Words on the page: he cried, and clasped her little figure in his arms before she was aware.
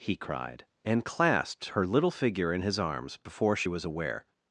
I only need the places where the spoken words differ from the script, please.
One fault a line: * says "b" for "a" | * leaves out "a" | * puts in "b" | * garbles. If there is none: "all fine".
all fine